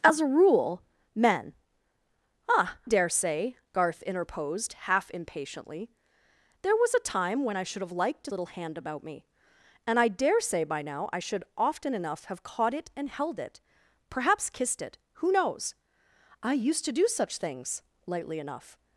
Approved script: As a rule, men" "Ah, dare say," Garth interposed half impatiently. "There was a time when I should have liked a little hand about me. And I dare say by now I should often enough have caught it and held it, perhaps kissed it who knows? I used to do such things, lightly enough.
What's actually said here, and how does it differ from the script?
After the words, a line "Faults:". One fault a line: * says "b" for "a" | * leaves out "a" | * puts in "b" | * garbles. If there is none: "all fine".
As a rule, men" "Ah, dare say," Garth interposed half impatiently. "There was a time when I should have liked a little hand about me. And I dare say by now I should often enough have caught it and held it, perhaps kissed it who knows? I used to do such things, lightly enough.
Faults:
all fine